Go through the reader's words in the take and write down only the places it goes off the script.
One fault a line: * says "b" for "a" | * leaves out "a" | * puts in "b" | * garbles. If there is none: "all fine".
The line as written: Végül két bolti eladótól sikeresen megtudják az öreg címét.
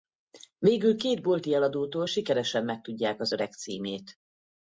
all fine